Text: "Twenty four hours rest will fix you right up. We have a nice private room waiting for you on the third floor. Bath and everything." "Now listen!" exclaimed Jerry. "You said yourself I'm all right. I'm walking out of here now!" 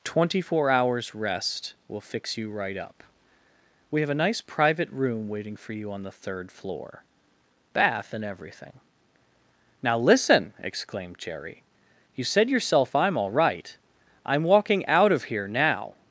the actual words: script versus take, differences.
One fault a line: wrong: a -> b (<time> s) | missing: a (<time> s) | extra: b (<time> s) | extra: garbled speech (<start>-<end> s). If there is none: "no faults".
no faults